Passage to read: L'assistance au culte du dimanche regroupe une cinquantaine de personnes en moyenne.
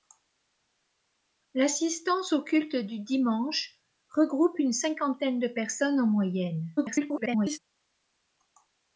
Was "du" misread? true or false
false